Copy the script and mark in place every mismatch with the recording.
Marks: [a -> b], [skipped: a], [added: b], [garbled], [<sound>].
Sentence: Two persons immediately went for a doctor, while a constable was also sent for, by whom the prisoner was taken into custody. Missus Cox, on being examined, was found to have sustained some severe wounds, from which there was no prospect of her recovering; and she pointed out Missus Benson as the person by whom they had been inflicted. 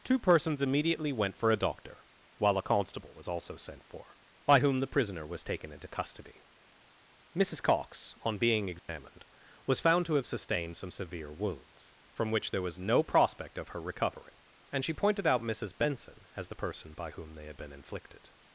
Two persons immediately went for a doctor, while a constable was also sent for, by whom the prisoner was taken into custody. Missus Cox, on being examined, [dropout] was found to have sustained some severe wounds, from which there was no prospect of her recovering; and she pointed out Missus Benson as the person by whom they had been inflicted.